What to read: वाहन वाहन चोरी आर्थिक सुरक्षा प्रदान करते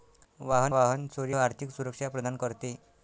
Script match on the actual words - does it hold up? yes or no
yes